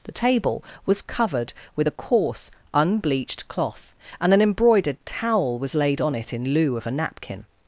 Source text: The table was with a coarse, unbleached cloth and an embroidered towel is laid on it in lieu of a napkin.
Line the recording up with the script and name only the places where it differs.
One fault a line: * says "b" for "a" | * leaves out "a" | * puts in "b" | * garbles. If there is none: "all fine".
* puts in "covered"
* says "was" for "is"